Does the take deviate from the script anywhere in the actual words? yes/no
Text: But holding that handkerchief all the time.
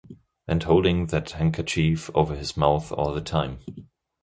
yes